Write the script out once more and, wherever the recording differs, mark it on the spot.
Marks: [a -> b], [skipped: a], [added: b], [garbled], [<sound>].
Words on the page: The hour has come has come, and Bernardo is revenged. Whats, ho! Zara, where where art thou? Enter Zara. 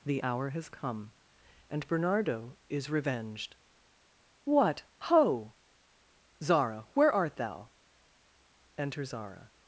The hour has come [skipped: has come,] and Bernardo is revenged. [Whats, -> What] ho! Zara, where [skipped: where] art thou? Enter Zara.